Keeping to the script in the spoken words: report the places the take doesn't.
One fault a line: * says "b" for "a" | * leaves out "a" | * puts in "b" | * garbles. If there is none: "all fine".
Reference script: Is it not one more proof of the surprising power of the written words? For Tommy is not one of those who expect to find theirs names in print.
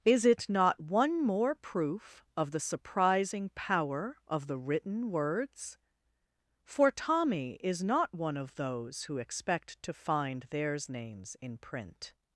all fine